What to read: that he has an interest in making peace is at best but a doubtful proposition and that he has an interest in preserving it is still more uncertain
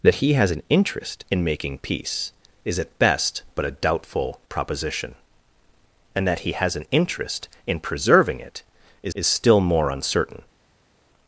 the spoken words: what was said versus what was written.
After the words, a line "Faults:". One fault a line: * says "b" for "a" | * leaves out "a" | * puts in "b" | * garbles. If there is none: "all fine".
that he has an interest in making peace is at best but a doubtful proposition and that he has an interest in preserving it is is still more uncertain
Faults:
* puts in "is"